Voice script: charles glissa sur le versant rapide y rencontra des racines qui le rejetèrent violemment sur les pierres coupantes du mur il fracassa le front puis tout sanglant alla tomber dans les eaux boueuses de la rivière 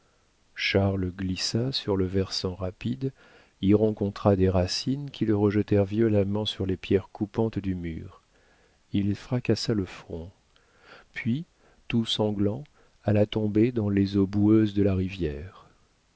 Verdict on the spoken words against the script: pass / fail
pass